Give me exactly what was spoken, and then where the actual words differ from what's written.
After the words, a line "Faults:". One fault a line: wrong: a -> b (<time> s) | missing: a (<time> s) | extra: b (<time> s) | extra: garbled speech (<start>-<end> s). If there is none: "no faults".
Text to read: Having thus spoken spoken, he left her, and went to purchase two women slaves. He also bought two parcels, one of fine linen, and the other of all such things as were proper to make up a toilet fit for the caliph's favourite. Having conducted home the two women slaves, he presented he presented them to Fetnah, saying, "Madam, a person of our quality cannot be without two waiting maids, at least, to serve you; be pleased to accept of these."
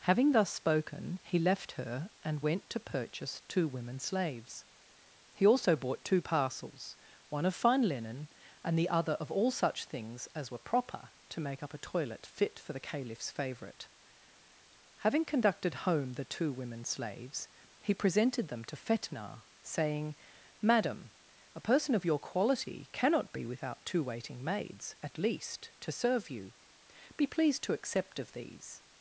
Having thus spoken, he left her, and went to purchase two women slaves. He also bought two parcels, one of fine linen, and the other of all such things as were proper to make up a toilet fit for the caliph's favourite. Having conducted home the two women slaves, he presented them to Fetnah, saying, "Madam, a person of your quality cannot be without two waiting maids, at least, to serve you; be pleased to accept of these."
Faults:
missing: spoken (1.2 s)
missing: he presented (18.5 s)
wrong: our -> your (22.0 s)